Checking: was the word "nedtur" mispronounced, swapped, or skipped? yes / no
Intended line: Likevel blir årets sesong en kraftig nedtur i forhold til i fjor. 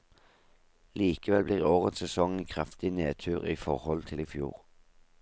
no